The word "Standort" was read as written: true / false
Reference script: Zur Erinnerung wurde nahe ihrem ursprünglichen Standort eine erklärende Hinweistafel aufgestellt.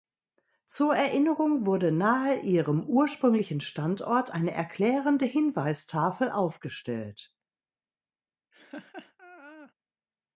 true